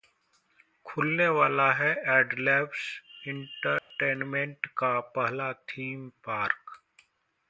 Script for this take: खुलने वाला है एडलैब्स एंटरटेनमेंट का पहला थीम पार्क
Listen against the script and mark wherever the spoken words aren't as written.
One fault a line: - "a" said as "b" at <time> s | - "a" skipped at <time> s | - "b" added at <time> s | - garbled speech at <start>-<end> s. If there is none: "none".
none